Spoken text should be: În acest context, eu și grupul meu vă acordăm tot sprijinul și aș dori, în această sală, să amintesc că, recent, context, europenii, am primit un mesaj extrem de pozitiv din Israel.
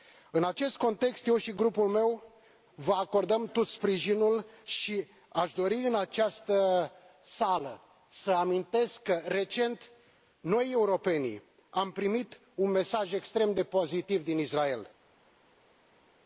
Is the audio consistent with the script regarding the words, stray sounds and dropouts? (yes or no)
no